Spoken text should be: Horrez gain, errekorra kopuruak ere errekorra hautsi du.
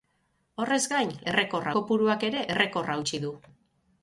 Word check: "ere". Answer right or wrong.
right